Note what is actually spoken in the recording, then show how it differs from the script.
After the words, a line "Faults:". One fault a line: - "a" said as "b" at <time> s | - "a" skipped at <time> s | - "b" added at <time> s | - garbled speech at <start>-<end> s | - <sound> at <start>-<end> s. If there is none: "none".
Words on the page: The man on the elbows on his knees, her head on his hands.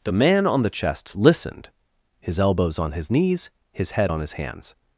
The man on the chest listened, his elbows on his knees, his head on his hands.
Faults:
- "chest listened his" added at 0.7 s
- "her" said as "his" at 3.7 s